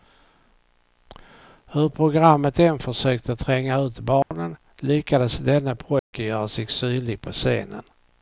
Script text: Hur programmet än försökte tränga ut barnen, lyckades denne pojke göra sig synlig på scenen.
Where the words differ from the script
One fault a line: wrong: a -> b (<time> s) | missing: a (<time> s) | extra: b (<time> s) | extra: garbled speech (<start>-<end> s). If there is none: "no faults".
no faults